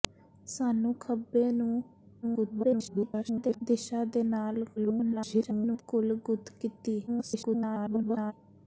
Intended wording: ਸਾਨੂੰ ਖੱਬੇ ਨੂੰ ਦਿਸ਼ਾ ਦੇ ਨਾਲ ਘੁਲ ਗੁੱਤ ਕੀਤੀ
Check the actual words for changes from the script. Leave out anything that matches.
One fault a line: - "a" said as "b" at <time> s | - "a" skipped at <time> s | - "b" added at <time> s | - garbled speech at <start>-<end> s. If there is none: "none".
- garbled speech at 2.2-3.6 s
- garbled speech at 4.8-5.8 s
- garbled speech at 7.1-8.3 s